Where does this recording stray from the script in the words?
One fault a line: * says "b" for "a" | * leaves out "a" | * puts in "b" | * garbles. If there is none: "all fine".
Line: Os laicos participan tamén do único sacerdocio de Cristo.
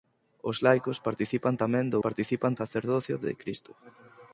* says "participan" for "único"